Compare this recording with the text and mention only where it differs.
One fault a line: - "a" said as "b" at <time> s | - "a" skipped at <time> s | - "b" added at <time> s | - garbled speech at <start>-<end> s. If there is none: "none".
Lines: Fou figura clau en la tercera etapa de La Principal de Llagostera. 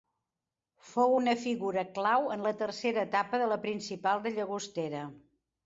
- "una" added at 1.1 s